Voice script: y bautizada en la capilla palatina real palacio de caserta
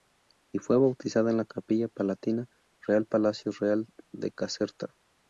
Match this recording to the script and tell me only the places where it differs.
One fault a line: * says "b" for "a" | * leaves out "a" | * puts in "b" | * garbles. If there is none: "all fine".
* puts in "fue"
* puts in "real"